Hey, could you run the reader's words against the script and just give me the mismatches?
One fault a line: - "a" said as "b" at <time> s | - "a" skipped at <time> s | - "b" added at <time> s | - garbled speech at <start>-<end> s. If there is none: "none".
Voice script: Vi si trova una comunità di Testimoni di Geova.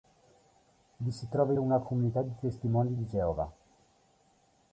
none